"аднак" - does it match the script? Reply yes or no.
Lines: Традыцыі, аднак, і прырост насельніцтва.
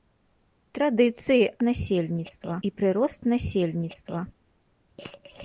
no